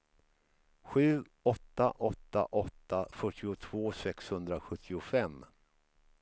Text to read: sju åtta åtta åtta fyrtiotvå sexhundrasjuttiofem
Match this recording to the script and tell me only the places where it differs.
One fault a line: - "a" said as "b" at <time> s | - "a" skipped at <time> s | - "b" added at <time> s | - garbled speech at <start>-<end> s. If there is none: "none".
none